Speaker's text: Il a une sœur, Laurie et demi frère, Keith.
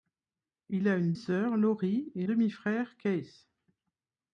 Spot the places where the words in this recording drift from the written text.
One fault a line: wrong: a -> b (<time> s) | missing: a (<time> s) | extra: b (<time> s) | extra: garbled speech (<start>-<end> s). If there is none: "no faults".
no faults